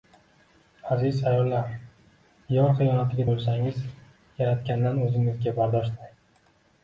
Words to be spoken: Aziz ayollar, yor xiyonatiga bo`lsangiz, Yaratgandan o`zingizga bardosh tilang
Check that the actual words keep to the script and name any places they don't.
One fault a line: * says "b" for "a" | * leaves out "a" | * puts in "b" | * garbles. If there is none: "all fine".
all fine